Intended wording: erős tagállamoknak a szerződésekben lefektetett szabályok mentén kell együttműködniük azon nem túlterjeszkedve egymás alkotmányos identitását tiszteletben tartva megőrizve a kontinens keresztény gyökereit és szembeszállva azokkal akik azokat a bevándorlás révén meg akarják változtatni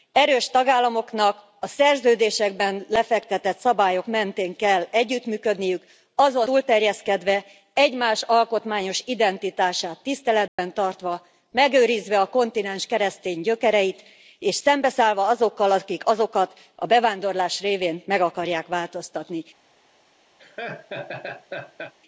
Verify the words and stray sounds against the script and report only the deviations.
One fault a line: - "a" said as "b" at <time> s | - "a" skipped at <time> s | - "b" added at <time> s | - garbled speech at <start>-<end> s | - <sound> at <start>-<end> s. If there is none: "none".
- "nem" skipped at 6.5 s
- dropout at 10.5-10.6 s
- laugh at 20.4-21.9 s